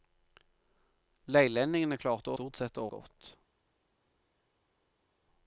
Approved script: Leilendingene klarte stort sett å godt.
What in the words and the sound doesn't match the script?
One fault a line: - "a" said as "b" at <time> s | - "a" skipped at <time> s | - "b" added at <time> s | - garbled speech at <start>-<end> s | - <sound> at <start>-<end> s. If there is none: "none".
none